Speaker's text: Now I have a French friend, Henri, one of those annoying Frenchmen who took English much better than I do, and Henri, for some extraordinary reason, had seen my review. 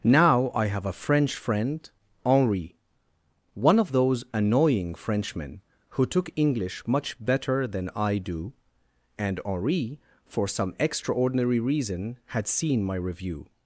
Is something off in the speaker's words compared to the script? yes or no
no